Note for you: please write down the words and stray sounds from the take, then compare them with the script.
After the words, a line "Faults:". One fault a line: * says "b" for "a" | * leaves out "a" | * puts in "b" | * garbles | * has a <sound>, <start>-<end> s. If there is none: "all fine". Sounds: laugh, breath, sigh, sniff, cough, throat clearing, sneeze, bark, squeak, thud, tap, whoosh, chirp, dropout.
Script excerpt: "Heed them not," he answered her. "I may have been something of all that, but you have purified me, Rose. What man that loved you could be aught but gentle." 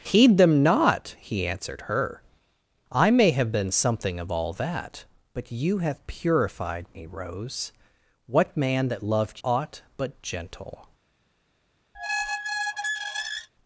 "Heed them not," he answered her. "I may have been something of all that, but you have purified me, Rose. What man that loved aught but gentle."
Faults:
* leaves out "you could be"
* has a squeak, 11.9-13.5 s